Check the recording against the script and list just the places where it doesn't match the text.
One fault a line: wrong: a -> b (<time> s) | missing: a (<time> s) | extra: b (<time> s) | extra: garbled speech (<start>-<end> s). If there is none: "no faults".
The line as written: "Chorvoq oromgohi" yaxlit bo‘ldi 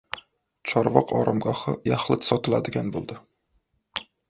extra: sotiladigan (2.3 s)